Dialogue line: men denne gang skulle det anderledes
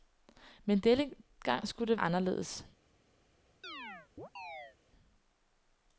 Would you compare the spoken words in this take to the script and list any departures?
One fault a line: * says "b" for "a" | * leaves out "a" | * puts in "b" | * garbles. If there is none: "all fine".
all fine